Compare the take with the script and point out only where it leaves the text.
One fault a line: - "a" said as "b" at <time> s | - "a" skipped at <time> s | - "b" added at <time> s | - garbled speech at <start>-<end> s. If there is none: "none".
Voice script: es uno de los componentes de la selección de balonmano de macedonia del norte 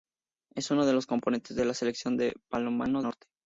- "de macedonia del" skipped at 3.0 s